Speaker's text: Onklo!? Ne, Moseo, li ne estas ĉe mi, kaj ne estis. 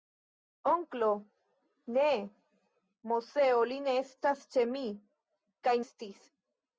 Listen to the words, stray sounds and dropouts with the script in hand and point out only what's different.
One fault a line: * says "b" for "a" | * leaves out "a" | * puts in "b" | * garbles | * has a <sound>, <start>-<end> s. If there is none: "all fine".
* leaves out "ne"